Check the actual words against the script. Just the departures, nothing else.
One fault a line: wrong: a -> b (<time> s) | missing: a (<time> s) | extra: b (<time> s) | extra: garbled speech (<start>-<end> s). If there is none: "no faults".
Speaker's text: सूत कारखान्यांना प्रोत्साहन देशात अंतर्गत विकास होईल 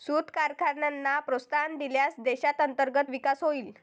extra: दिल्यास (1.8 s)